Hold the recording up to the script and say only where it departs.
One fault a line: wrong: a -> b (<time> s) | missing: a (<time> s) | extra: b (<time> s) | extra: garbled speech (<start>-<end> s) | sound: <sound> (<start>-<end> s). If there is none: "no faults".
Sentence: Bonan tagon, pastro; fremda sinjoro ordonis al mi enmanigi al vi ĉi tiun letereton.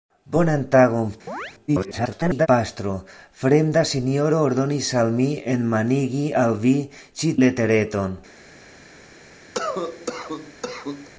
sound: chirp (1.3-1.5 s)
extra: garbled speech (1.7-2.5 s)
missing: tiun (7.4 s)
sound: cough (9.5-11.1 s)